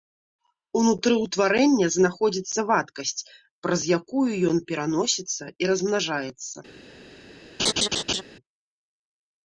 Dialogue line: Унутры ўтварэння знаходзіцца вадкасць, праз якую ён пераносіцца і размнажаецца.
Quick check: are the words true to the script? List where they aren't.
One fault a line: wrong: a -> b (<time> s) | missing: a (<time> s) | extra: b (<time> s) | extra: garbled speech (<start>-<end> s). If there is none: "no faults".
no faults